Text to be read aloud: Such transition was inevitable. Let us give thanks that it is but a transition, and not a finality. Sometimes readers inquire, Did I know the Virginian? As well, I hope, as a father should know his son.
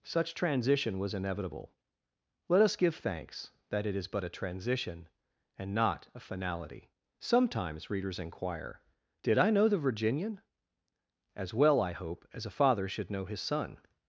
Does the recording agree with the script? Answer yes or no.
yes